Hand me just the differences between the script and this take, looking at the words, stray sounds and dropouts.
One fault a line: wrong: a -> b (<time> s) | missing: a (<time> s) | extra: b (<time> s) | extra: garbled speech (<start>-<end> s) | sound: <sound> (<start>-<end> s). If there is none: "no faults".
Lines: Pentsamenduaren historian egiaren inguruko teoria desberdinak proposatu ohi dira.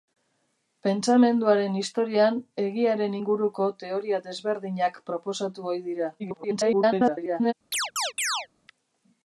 extra: garbled speech (6.2-7.5 s)
sound: chirp (7.7-8.5 s)